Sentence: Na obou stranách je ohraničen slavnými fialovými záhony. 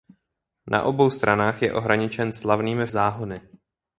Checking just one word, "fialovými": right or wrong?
wrong